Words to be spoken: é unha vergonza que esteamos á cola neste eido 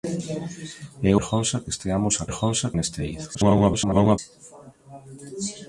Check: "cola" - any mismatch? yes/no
yes